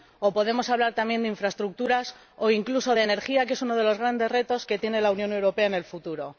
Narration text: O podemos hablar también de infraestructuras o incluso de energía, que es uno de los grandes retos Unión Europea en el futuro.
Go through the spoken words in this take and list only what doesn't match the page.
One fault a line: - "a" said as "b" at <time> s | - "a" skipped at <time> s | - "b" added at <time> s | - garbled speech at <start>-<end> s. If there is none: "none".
- "que tiene la" added at 4.6 s